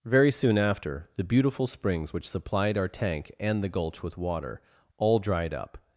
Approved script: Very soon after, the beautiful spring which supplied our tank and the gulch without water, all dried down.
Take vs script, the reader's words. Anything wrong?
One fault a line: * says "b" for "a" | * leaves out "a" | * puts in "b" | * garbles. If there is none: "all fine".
* says "springs" for "spring"
* says "with" for "without"
* says "up" for "down"